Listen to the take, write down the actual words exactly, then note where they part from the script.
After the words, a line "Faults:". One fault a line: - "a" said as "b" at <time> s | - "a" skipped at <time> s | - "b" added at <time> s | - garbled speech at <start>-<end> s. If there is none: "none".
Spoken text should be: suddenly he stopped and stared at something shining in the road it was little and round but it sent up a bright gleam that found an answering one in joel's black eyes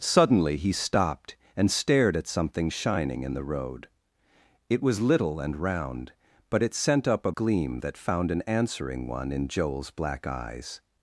suddenly he stopped and stared at something shining in the road it was little and round but it sent up a gleam that found an answering one in joel's black eyes
Faults:
- "bright" skipped at 7.3 s